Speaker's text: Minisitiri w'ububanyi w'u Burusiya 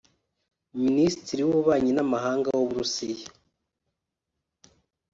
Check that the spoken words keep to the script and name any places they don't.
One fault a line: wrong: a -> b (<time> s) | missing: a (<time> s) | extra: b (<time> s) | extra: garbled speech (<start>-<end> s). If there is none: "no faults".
extra: n'amahanga (1.9 s)